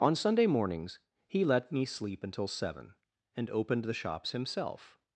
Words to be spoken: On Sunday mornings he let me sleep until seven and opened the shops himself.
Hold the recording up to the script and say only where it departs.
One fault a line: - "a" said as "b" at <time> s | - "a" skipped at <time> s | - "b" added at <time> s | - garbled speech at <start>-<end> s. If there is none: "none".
none